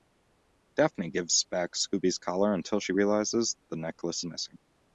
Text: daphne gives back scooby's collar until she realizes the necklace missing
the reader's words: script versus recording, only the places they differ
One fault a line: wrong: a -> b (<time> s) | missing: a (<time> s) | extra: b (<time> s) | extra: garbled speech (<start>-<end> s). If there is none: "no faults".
no faults